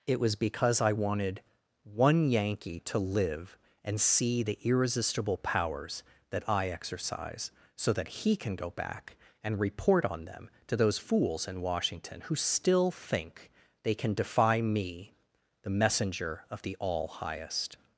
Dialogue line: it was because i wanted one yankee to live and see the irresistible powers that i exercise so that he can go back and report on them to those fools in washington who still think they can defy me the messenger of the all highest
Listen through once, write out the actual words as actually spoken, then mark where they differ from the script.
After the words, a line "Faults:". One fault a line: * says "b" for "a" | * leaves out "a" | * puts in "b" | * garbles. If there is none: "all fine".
it was because i wanted one yankee to live and see the irresistible powers that i exercise so that he can go back and report on them to those fools in washington who still think they can defy me the messenger of the all highest
Faults:
all fine